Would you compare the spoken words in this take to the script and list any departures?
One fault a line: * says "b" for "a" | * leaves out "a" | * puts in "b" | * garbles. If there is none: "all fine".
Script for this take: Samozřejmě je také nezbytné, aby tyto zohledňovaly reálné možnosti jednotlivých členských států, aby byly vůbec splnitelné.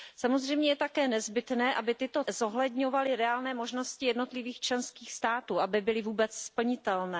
all fine